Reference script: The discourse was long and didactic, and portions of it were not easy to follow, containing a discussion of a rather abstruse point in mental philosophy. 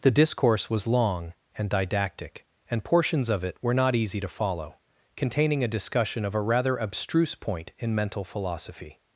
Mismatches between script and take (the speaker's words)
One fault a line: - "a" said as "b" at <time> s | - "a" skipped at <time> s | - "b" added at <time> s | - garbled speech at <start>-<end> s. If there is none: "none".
none